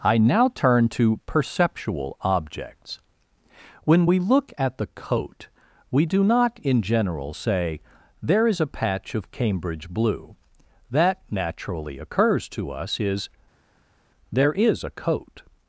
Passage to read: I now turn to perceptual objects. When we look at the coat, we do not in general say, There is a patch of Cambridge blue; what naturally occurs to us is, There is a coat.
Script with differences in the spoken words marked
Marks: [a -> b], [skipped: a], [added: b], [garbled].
I now turn to perceptual objects. When we look at the coat, we do not in general say, There is a patch of Cambridge blue; [what -> that] naturally occurs to us is, There is a coat.